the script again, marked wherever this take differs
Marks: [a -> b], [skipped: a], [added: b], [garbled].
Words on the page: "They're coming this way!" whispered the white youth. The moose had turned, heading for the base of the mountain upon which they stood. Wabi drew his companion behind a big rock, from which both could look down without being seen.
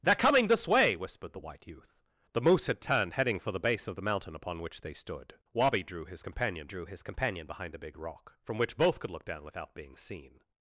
"They're coming this way!" whispered the white youth. The moose had turned, heading for the base of the mountain upon which they stood. Wabi drew his companion [added: drew his companion] behind a big rock, from which both could look down without being seen.